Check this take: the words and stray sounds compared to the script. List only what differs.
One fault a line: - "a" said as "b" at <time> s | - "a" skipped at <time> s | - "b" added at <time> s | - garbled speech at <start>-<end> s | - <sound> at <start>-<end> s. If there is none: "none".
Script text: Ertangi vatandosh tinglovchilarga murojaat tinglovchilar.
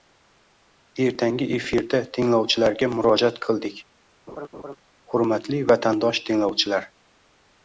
- "vatandosh" said as "efirda" at 1.6 s
- "qildik Hurmatli vatandosh" added at 3.5 s
- laugh at 4.3-4.8 s